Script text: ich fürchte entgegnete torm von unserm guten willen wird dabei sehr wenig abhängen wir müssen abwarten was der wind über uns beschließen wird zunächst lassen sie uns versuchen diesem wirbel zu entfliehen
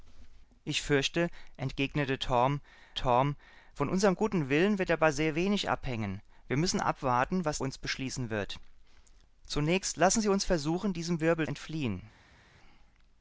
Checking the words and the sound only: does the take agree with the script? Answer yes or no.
no